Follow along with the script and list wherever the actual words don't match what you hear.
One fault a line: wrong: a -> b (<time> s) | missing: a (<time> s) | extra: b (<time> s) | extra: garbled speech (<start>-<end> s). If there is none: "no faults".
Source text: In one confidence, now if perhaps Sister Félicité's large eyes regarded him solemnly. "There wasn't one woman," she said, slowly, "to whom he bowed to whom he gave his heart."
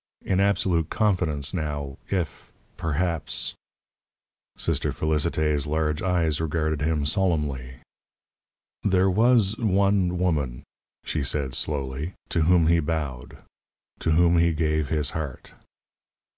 wrong: one -> absolute (0.4 s)
wrong: wasn't -> was (9.1 s)